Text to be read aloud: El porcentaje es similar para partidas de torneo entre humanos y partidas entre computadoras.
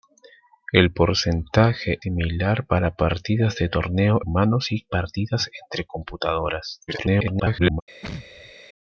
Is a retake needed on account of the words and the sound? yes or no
yes